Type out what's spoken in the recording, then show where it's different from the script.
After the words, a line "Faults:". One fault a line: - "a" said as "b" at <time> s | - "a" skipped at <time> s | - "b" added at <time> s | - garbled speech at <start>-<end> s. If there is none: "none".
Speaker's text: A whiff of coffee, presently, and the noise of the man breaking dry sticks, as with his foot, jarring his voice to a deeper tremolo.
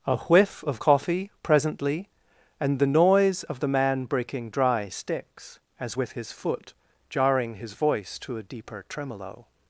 A whiff of coffee, presently, and the noise of the man breaking dry sticks, as with his foot, jarring his voice to a deeper tremolo.
Faults:
none